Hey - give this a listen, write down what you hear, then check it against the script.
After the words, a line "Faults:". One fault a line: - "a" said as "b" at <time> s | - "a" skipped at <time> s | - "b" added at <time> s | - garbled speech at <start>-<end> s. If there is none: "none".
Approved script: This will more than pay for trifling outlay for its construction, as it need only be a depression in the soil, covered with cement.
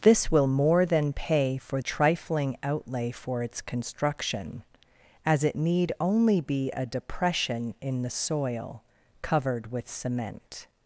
This will more than pay for trifling outlay for its construction, as it need only be a depression in the soil, covered with cement.
Faults:
none